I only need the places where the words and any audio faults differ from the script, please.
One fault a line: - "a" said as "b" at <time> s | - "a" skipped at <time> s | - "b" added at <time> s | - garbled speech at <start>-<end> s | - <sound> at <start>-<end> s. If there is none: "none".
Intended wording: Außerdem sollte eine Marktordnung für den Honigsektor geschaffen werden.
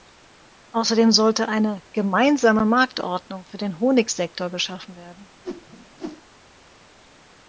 - "Gemeinsame" added at 1.9 s
- whoosh at 5.4-6.2 s